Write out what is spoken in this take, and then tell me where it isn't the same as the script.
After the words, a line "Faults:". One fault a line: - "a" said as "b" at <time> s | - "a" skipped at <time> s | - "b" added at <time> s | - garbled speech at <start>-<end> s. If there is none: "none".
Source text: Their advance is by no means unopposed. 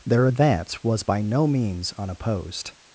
Their advance was by no means unopposed.
Faults:
- "is" said as "was" at 0.8 s